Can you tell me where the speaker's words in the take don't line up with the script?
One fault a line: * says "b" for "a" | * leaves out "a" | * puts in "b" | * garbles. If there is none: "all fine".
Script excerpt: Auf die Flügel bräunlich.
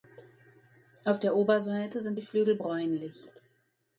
* puts in "der Oberseite sind"